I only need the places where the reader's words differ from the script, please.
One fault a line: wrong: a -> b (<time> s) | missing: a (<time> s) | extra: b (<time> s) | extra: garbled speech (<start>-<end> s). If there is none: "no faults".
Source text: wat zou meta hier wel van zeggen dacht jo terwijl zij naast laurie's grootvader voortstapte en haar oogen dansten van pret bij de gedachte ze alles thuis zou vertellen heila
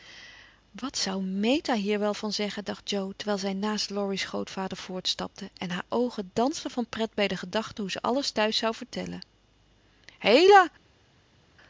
extra: hoe (7.8 s)